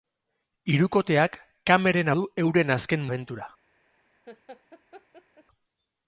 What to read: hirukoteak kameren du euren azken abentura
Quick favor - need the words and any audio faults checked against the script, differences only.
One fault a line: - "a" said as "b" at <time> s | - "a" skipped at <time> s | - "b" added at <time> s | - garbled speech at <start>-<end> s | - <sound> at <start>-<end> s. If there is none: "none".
- laugh at 4.3-5.4 s